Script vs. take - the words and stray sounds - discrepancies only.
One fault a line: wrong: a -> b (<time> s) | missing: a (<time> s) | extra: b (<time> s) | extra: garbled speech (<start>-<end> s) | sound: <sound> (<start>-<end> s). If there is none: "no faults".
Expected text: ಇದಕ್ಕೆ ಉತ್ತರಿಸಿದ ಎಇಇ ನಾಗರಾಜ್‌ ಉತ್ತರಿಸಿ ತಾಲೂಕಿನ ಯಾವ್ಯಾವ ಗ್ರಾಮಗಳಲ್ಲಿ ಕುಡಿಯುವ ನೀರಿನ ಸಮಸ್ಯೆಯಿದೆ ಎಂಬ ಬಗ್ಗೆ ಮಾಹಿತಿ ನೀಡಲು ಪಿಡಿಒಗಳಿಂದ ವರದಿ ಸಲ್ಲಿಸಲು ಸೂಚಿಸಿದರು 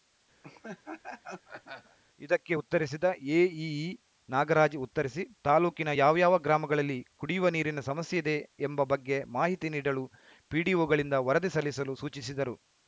sound: laugh (0.4-2.0 s)